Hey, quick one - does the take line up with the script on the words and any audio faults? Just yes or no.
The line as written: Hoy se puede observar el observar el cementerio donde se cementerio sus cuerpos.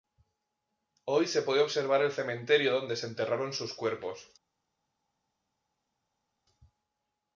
no